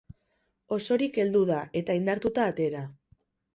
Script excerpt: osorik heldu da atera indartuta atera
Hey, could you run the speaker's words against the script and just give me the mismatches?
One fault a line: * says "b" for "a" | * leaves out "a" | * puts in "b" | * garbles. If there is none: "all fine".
* says "eta" for "atera"